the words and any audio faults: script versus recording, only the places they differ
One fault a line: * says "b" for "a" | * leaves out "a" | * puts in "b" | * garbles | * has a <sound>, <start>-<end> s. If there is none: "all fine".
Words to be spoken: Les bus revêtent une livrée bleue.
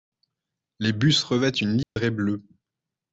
* has a dropout, 1.8-2.0 s